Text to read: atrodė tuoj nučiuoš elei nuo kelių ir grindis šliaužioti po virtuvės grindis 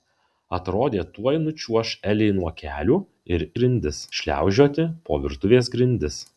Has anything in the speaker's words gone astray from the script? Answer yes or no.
no